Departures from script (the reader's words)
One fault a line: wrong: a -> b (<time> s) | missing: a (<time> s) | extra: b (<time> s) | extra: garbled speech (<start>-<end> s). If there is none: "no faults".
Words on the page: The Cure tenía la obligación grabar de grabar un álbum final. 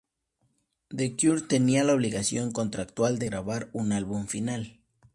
wrong: grabar -> contractual (2.5 s)